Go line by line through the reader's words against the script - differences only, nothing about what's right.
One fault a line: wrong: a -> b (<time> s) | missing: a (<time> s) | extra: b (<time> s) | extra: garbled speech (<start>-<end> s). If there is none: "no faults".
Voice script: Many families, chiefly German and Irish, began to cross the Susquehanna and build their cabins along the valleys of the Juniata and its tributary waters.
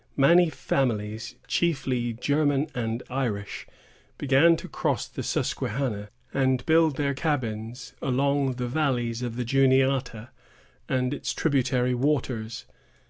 no faults